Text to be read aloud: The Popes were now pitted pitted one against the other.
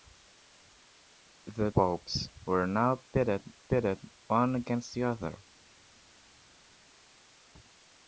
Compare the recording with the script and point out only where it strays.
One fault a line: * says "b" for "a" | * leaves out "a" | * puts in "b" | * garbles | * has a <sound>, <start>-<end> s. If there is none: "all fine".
all fine